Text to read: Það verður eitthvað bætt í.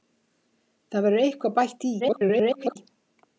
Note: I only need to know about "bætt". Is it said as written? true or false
true